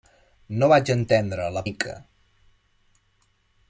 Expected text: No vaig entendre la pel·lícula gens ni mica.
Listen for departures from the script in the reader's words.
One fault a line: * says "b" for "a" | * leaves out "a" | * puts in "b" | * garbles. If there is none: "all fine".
* leaves out "pel·lícula gens ni"